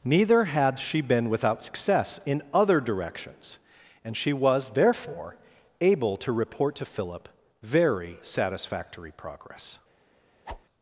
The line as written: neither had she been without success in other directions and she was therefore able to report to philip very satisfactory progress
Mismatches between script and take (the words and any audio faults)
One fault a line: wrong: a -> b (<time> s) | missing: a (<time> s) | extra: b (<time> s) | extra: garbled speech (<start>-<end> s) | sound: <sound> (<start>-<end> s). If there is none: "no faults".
sound: whoosh (10.5-10.6 s)